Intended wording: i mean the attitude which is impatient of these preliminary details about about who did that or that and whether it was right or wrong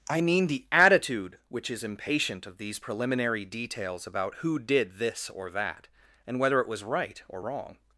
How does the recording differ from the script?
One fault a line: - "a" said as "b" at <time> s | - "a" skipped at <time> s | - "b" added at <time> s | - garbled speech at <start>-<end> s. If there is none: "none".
- "about" skipped at 4.3 s
- "that" said as "this" at 5.0 s